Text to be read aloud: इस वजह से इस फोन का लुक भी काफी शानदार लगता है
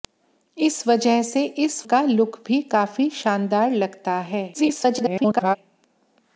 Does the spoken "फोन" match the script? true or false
false